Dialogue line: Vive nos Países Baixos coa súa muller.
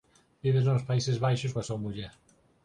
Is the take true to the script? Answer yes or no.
yes